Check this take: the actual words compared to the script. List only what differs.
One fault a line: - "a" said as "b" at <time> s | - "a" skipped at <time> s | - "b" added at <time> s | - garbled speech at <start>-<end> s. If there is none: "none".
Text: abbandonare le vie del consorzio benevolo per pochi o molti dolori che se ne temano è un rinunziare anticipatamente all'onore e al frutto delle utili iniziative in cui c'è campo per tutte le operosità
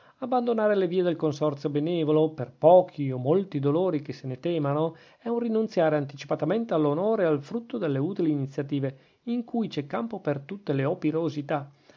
none